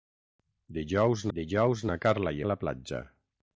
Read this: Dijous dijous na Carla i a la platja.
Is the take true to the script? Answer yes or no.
yes